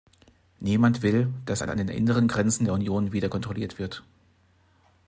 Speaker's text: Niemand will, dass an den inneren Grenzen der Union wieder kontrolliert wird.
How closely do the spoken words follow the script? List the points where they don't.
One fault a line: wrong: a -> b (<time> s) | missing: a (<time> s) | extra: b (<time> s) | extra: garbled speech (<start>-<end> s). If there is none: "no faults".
extra: an (1.7 s)